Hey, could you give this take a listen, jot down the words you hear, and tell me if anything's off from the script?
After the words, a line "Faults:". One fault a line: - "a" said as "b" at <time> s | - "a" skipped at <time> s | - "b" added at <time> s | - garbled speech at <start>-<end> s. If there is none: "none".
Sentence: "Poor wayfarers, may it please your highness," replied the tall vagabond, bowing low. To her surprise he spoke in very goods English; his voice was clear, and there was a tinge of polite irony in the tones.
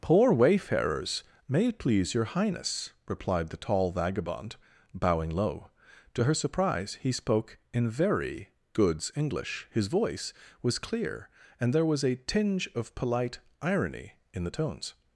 "Poor wayfarers, may it please your highness," replied the tall vagabond, bowing low. To her surprise he spoke in very goods English; his voice was clear, and there was a tinge of polite irony in the tones.
Faults:
none